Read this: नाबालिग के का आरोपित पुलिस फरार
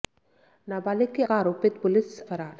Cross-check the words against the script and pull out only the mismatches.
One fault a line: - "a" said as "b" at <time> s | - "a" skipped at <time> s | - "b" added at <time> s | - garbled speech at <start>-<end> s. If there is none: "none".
none